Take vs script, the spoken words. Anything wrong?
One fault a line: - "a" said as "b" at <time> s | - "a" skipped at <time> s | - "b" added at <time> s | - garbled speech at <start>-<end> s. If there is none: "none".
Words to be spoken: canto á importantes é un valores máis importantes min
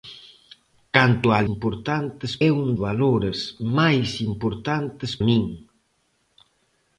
none